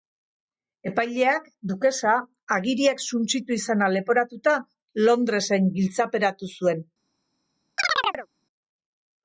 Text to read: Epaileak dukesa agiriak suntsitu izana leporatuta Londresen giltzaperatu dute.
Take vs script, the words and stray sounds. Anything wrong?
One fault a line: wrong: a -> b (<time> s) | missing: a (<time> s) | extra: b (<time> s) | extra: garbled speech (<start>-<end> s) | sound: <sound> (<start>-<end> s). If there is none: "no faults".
wrong: dute -> zuen (6.5 s)
sound: chirp (7.8-8.3 s)